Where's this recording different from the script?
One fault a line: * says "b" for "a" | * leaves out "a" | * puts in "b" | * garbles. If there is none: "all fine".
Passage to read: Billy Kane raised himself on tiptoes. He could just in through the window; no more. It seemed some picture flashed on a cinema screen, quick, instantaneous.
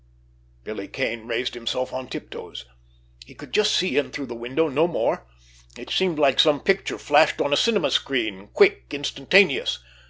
* puts in "see"
* puts in "like"